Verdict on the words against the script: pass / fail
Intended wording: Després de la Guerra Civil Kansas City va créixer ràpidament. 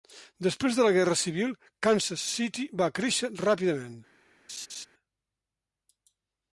pass